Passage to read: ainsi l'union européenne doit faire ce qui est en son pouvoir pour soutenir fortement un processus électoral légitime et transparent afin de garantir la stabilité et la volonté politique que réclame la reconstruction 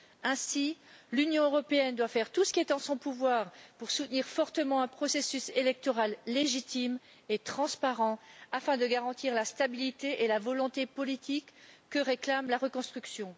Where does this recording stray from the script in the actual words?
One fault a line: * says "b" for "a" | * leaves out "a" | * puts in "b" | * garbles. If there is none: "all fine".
* puts in "tout"